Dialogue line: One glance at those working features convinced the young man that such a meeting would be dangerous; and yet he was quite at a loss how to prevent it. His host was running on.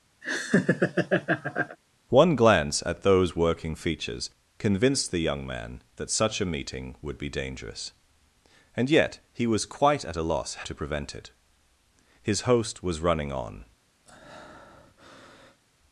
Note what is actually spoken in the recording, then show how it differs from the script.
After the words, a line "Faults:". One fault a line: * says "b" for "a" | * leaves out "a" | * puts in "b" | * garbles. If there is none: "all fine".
One glance at those working features convinced the young man that such a meeting would be dangerous; and yet he was quite at a loss to prevent it. His host was running on.
Faults:
* leaves out "how"